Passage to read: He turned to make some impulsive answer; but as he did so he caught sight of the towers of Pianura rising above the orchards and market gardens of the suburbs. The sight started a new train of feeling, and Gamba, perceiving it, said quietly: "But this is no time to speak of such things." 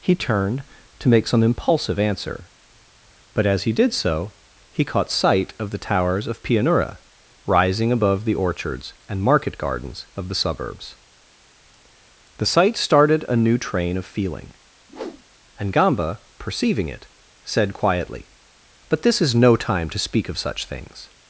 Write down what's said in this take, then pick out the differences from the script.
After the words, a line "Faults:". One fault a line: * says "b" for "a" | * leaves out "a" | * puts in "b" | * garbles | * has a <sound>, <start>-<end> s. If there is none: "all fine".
He turned to make some impulsive answer; but as he did so he caught sight of the towers of Pianura rising above the orchards and market gardens of the suburbs. The sight started a new train of feeling, and Gamba, perceiving it, said quietly: "But this is no time to speak of such things."
Faults:
* has a whoosh, 14.9-15.2 s